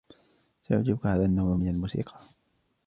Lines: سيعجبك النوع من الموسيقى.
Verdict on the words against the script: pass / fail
fail